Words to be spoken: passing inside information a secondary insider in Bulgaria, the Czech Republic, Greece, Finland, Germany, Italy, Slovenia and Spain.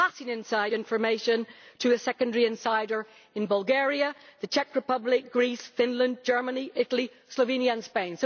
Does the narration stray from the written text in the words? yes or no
yes